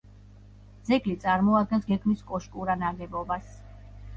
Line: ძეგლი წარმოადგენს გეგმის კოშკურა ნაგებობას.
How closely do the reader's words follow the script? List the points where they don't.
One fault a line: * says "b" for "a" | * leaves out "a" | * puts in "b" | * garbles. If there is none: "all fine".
all fine